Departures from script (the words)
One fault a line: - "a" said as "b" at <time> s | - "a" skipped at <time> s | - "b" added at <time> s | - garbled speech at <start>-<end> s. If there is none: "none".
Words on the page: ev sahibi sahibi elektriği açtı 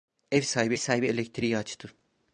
none